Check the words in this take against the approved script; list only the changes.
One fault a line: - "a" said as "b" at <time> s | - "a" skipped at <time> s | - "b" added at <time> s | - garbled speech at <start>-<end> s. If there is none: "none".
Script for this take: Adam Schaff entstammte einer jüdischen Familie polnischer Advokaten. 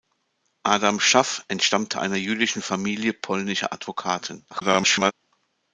- garbled speech at 4.5-5.1 s